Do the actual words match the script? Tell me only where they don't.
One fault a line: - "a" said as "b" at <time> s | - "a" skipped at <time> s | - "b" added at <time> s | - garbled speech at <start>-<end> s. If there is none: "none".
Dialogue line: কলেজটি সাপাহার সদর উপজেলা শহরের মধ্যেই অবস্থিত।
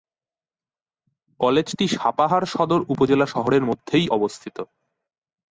none